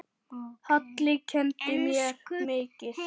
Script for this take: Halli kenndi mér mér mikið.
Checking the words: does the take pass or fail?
fail